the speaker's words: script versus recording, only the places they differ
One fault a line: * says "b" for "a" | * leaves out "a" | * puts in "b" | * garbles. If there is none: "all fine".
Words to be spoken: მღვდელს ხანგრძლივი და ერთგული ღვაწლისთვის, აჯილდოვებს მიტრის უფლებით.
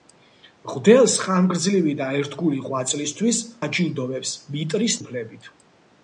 all fine